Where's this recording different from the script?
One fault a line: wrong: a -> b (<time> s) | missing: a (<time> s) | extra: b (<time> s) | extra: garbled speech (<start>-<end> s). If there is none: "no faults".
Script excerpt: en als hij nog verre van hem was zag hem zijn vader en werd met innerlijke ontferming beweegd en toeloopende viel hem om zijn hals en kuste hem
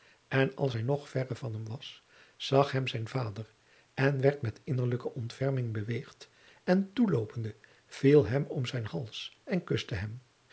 no faults